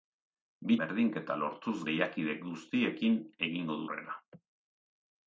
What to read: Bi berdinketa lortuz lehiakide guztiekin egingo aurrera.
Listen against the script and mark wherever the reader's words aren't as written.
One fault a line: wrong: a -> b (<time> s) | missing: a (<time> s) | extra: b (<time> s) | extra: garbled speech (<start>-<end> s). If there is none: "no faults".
no faults